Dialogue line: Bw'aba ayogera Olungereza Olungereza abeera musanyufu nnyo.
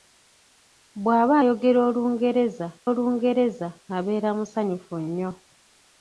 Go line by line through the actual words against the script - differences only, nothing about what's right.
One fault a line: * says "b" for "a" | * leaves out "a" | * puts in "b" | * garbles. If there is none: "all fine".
all fine